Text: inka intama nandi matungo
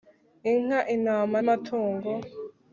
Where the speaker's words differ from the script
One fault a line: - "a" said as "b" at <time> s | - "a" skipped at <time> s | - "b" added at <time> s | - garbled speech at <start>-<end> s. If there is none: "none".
- "nandi" skipped at 1.4 s